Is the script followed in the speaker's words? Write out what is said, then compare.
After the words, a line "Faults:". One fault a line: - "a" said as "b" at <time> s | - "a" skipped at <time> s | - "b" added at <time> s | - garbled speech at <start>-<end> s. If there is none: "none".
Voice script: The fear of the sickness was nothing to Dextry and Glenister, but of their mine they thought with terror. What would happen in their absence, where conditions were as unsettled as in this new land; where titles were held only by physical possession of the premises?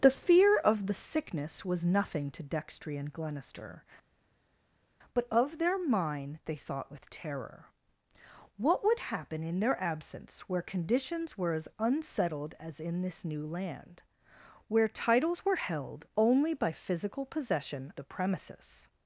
The fear of the sickness was nothing to Dextry and Glenister, but of their mine they thought with terror. What would happen in their absence, where conditions were as unsettled as in this new land; where titles were held only by physical possession the premises?
Faults:
- "of" skipped at 17.9 s